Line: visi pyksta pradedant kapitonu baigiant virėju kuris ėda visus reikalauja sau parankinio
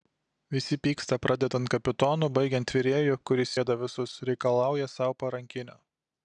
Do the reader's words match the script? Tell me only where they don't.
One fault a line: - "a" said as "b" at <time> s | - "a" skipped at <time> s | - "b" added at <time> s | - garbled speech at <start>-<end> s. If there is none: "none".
none